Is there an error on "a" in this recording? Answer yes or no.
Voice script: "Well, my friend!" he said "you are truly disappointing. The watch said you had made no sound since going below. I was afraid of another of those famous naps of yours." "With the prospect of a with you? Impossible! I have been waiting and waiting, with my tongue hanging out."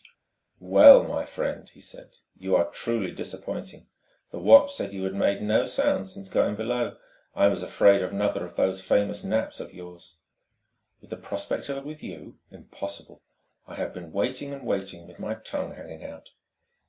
no